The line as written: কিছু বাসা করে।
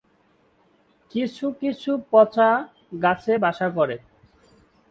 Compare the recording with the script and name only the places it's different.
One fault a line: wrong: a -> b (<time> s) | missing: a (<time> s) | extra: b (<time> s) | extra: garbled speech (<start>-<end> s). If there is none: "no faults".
extra: কিছু পচা গাছে (1.6 s)